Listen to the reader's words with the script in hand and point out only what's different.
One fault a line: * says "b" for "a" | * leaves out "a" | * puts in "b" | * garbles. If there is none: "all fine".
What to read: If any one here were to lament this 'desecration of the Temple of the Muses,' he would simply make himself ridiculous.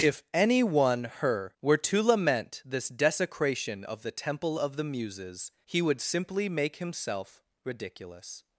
* says "her" for "here"